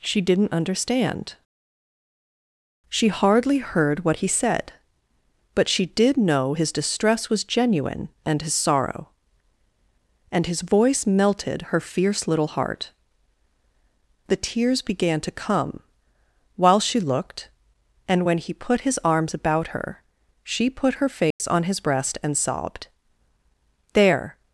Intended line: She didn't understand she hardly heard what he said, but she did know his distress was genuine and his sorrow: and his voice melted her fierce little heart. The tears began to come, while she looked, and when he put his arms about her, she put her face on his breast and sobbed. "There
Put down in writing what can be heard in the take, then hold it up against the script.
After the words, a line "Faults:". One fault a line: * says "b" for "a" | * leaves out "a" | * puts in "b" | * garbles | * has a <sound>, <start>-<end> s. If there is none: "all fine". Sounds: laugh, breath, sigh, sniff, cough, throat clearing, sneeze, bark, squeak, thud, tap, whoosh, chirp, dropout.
She didn't understand she hardly heard what he said, but she did know his distress was genuine and his sorrow: and his voice melted her fierce little heart. The tears began to come, while she looked, and when he put his arms about her, she put her face on his breast and sobbed. "There
Faults:
* has a dropout, 21.3-21.4 s